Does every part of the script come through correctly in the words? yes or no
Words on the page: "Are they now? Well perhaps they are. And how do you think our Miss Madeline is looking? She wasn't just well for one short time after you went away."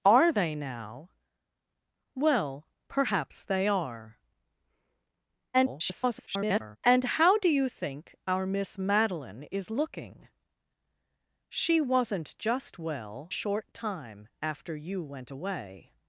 no